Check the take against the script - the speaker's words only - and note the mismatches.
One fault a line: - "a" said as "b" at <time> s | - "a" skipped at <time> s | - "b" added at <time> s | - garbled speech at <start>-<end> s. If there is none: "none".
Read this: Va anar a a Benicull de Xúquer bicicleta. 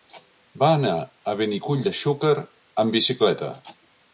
- "a" skipped at 1.4 s
- "amb" added at 2.8 s